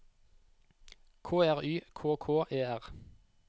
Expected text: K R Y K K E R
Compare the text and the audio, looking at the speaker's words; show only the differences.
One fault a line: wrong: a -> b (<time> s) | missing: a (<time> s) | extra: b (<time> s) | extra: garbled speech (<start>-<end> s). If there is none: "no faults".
no faults